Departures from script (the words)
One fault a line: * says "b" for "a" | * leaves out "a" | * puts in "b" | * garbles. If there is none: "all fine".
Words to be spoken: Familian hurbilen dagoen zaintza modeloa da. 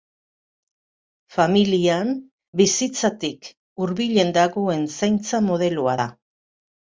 * puts in "bizitzatik"